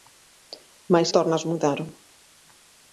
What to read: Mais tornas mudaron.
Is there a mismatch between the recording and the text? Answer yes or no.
no